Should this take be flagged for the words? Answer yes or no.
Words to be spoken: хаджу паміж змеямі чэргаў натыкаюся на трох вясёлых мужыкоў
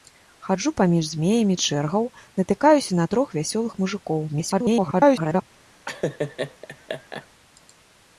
yes